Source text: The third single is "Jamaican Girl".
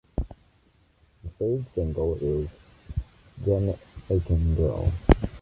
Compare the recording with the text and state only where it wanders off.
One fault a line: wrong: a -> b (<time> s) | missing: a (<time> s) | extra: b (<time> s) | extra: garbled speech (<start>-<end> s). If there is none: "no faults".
no faults